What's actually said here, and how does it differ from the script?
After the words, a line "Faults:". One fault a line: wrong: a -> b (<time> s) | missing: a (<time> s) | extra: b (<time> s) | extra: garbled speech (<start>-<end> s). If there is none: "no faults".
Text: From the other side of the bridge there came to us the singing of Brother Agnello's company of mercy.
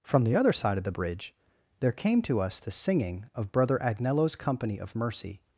From the other side of the bridge there came to us the singing of Brother Agnello's company of mercy.
Faults:
no faults